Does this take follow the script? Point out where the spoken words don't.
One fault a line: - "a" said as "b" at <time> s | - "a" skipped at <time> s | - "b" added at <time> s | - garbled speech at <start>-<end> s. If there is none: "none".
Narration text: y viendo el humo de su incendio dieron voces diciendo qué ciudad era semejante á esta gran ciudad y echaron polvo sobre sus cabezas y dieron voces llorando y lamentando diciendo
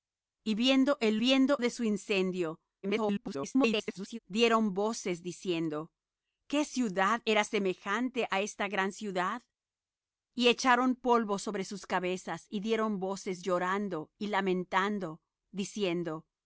- "humo" said as "viendo" at 1.2 s
- garbled speech at 2.8-4.2 s